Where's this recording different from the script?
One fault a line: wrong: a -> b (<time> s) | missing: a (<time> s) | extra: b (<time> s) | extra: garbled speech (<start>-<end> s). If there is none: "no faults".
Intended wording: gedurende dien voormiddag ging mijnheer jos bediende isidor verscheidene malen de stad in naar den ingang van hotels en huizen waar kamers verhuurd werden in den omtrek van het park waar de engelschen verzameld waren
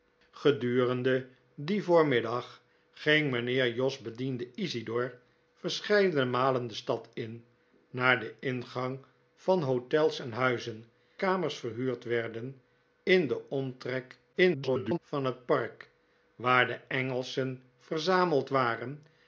missing: waar (10.8 s)
extra: garbled speech (14.3-15.0 s)